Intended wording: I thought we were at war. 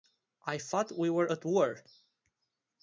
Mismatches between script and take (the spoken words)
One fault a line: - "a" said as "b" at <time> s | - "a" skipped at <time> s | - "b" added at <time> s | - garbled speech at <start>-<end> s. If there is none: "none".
none